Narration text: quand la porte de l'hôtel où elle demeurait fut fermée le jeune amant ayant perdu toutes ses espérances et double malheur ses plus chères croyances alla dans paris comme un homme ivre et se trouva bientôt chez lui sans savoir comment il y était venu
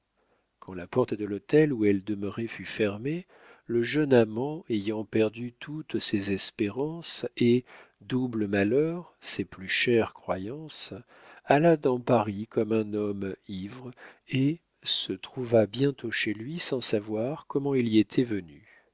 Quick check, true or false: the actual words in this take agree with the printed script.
true